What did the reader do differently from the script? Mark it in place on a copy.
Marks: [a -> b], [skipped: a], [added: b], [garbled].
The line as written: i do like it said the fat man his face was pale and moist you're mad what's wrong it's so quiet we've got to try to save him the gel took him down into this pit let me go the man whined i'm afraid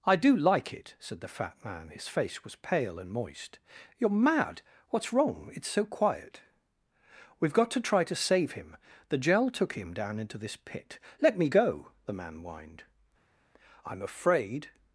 i do like it said the fat man his face was pale and moist you're mad what's wrong it's so quiet we've got to try to save him the gel took him down into this pit let me go the man whined i'm afraid